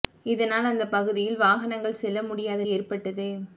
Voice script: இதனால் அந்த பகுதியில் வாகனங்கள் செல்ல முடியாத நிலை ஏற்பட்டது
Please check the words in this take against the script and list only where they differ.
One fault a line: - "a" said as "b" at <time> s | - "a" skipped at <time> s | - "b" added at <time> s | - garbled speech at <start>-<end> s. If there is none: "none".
- "நிலை" skipped at 2.6 s